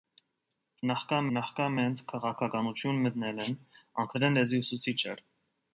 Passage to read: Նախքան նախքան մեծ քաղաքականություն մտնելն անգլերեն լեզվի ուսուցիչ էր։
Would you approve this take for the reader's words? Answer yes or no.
yes